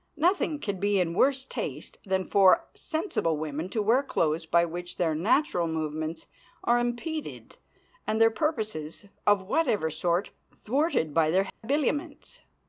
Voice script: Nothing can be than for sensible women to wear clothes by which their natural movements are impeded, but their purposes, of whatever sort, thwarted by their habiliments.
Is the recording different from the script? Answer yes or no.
yes